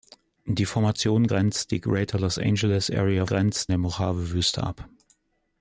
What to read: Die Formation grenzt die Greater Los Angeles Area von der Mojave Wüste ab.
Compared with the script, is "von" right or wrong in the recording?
wrong